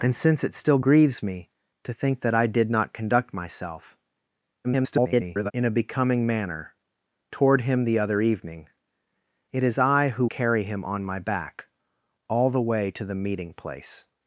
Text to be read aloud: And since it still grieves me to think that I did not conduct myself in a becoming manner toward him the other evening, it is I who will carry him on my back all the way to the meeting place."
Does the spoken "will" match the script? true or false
false